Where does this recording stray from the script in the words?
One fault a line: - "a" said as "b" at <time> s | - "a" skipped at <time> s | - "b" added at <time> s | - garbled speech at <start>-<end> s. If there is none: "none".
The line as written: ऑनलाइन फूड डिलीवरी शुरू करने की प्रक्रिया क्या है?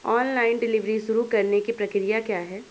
- "फूड" skipped at 0.6 s